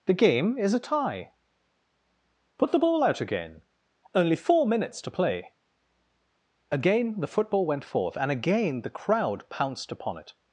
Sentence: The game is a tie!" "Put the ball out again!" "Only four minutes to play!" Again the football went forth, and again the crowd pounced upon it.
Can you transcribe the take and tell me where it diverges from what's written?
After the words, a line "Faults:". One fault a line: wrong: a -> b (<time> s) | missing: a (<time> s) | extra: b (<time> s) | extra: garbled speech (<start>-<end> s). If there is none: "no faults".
The game is a tie!" "Put the ball out again!" "Only four minutes to play!" Again the football went forth, and again the crowd pounced upon it.
Faults:
no faults